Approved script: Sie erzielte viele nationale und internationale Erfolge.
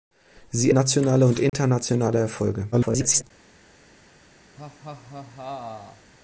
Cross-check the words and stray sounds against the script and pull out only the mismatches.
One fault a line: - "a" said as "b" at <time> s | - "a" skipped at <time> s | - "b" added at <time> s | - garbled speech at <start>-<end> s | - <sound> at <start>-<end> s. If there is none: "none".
- "erzielte viele" skipped at 0.7 s
- dropout at 1.5-1.5 s
- garbled speech at 2.7-3.2 s
- laugh at 4.6-6.1 s